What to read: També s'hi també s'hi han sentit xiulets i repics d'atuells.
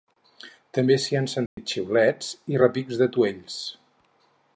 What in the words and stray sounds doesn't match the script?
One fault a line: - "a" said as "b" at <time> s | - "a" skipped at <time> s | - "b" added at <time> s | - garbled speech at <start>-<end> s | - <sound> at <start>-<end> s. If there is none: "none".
- "també s'hi" skipped at 1.2 s
- dropout at 1.5-1.6 s